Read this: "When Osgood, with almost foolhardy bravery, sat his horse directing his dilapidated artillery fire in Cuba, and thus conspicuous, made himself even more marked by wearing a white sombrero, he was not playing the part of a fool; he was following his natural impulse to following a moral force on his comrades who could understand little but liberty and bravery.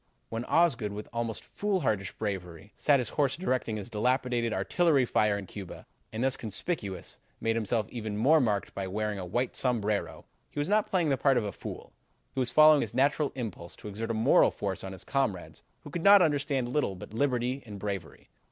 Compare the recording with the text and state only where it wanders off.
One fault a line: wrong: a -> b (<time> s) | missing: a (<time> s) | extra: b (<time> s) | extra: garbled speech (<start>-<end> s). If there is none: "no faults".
wrong: following -> exert (13.9 s)